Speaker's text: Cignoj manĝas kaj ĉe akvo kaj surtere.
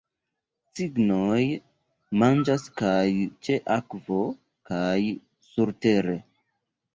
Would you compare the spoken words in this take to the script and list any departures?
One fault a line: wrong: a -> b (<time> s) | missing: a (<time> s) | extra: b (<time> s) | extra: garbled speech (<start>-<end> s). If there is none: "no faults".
no faults